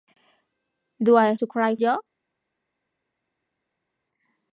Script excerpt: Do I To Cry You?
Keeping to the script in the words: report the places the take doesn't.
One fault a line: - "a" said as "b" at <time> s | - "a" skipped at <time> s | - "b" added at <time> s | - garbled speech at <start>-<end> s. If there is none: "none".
none